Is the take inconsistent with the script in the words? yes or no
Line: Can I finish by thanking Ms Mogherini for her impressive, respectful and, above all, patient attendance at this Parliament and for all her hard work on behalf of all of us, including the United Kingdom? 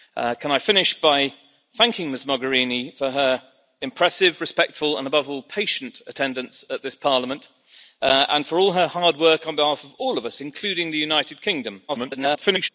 yes